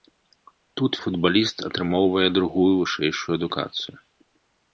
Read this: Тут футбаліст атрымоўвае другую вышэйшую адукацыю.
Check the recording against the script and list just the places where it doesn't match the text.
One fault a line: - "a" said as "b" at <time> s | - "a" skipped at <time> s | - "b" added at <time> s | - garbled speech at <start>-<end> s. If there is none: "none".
none